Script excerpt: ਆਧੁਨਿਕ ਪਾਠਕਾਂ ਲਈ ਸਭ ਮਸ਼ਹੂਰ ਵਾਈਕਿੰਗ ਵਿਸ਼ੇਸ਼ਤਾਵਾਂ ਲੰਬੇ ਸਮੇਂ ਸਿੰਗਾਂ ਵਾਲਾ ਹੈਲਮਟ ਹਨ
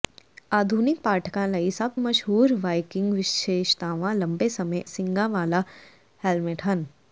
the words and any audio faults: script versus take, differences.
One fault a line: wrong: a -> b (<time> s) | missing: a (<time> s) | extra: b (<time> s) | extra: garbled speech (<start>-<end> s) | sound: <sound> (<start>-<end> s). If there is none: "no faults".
no faults